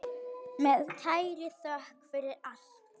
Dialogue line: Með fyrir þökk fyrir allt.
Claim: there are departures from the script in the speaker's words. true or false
true